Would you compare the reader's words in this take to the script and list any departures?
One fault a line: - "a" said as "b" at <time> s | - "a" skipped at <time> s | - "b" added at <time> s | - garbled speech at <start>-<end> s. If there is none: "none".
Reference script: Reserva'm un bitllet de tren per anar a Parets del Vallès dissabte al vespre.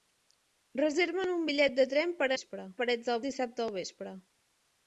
- "anar" said as "vespre" at 2.3 s
- "Vallès" skipped at 3.2 s